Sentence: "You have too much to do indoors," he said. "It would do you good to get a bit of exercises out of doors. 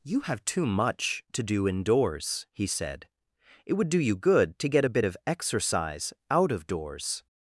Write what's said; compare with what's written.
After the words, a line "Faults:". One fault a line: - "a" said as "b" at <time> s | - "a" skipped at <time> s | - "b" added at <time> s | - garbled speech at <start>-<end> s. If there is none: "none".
"You have too much to do indoors," he said. "It would do you good to get a bit of exercise out of doors.
Faults:
- "exercises" said as "exercise" at 5.3 s